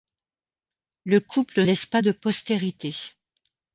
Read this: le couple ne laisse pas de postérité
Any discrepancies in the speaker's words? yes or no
yes